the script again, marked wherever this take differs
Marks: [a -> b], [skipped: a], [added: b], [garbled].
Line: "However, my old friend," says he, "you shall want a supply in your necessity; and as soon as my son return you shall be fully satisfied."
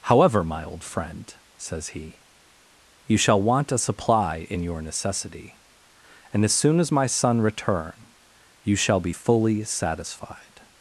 "However, my old friend," says he, "you shall want a supply in your necessity; and as soon as my son return you shall be fully satisfied."